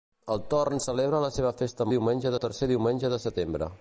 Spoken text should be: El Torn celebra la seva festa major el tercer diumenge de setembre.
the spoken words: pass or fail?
fail